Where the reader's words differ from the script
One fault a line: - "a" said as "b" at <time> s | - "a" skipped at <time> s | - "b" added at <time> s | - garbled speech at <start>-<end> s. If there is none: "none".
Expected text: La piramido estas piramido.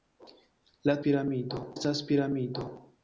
none